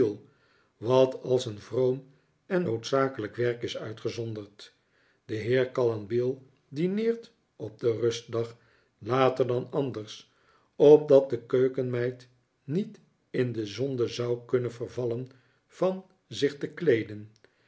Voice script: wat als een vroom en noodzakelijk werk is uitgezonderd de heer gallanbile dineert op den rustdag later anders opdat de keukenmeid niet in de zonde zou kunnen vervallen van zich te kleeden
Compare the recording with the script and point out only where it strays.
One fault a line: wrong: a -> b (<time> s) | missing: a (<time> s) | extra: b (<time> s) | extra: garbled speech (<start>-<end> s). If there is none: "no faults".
extra: dan (9.5 s)